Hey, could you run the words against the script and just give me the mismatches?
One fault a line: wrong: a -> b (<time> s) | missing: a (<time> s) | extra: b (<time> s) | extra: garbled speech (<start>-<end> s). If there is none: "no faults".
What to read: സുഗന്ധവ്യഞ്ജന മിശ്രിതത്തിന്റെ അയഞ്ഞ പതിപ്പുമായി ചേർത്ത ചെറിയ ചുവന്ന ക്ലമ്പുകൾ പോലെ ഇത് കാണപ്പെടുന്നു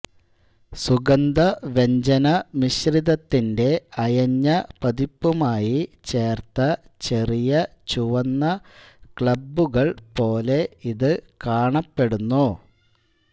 no faults